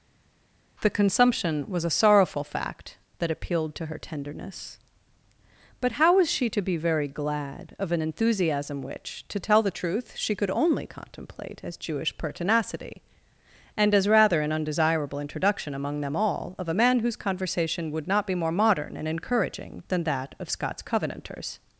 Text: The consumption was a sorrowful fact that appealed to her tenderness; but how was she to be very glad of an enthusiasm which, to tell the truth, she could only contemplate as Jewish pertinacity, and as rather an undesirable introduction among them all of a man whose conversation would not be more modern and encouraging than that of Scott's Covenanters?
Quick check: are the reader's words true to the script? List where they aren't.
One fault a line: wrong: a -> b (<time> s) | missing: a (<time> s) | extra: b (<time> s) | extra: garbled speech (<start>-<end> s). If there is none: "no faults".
no faults